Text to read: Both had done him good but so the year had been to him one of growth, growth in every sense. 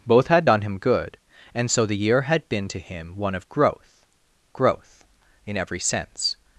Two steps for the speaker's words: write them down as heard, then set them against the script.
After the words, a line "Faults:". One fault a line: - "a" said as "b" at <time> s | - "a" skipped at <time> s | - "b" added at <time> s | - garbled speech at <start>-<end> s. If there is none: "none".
Both had done him good and so the year had been to him one of growth, growth in every sense.
Faults:
- "but" said as "and" at 1.5 s